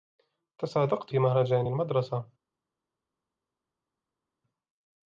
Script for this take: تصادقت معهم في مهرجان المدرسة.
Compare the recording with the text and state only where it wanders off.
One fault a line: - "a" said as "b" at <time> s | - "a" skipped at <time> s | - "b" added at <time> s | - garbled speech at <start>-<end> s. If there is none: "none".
- "معهم" skipped at 1.1 s